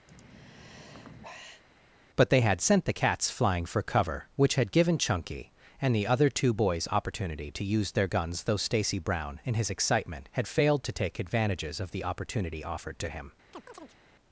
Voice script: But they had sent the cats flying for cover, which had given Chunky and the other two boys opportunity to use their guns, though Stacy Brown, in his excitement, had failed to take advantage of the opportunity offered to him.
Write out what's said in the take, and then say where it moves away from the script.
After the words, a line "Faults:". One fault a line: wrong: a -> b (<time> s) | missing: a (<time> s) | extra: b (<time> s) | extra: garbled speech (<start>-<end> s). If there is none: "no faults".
But they had sent the cats flying for cover, which had given Chunky and the other two boys opportunity to use their guns, though Stacy Brown, in his excitement, had failed to take advantages of the opportunity offered to him.
Faults:
wrong: advantage -> advantages (11.2 s)